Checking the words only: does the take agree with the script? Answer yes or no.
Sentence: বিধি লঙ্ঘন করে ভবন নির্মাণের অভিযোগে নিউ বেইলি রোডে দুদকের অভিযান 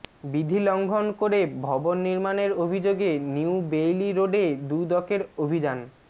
yes